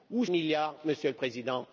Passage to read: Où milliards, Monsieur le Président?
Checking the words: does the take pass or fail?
pass